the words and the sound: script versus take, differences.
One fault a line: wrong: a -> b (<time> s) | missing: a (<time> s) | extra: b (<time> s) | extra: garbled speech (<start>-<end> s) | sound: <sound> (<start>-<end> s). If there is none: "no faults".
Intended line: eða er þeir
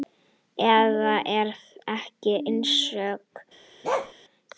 extra: ég einsog (2.3 s)
sound: bark (3.8-4.1 s)